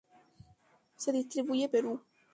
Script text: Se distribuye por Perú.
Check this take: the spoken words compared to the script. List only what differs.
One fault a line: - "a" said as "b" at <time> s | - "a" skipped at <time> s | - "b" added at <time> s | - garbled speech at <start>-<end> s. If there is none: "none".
- "por" skipped at 1.7 s